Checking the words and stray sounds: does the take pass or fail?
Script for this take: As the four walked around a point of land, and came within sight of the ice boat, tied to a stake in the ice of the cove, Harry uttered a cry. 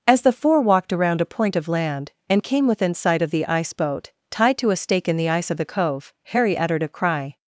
pass